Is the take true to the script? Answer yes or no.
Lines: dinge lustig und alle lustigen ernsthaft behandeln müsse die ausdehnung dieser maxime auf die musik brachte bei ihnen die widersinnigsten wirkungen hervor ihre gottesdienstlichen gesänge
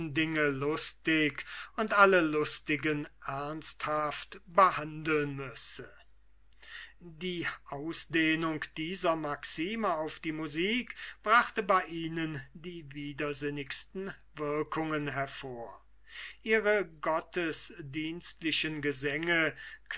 yes